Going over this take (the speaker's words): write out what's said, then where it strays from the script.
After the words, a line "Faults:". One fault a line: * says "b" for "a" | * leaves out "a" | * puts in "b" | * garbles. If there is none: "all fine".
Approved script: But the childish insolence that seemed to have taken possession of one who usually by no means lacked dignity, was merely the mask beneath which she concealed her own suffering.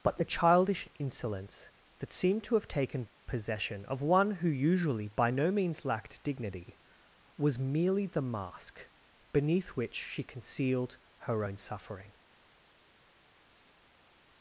But the childish insolence that seemed to have taken possession of one who usually by no means lacked dignity, was merely the mask beneath which she concealed her own suffering.
Faults:
all fine